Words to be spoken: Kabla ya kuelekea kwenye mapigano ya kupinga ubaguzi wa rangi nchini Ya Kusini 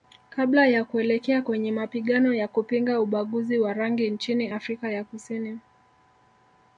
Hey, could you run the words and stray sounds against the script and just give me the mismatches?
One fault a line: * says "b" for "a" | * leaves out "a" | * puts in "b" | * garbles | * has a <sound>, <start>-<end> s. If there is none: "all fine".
* puts in "Afrika"